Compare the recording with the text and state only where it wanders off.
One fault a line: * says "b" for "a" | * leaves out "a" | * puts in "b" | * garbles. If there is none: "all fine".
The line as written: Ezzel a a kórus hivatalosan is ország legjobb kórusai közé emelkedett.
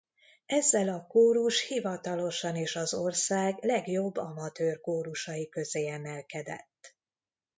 * leaves out "a"
* puts in "az"
* puts in "amatőr"